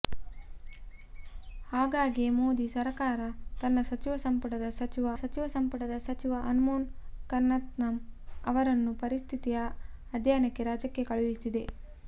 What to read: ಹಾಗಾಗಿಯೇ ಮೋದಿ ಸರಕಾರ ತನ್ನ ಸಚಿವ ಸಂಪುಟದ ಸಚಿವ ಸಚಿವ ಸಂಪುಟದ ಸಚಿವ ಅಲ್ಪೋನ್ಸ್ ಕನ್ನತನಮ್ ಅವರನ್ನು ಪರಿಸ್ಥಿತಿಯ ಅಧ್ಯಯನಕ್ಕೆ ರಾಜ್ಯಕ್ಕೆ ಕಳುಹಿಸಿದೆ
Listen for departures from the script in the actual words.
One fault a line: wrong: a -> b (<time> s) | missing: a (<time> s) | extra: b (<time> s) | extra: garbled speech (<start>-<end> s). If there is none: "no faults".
no faults